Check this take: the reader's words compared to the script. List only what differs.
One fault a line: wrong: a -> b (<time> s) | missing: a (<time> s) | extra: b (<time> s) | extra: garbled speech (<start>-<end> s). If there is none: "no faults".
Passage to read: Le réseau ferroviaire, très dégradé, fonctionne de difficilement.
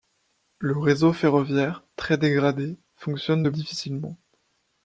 no faults